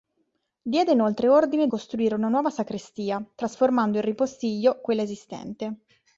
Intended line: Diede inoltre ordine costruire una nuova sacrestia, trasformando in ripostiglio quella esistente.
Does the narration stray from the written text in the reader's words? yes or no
no